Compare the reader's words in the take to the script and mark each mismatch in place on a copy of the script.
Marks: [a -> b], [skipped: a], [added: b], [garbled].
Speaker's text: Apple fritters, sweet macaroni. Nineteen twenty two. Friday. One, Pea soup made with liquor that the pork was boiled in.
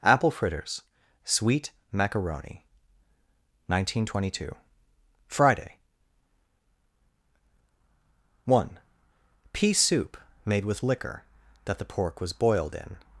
Apple fritters, sweet macaroni. Nineteen twenty two. Friday. One, Pea soup made with liquor that the pork was boiled in.